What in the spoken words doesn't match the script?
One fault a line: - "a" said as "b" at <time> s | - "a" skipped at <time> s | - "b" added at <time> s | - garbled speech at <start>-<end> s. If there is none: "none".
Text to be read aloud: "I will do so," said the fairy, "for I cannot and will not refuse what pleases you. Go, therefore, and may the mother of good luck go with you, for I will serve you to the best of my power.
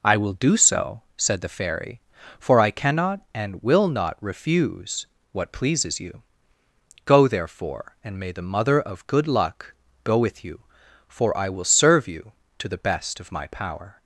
none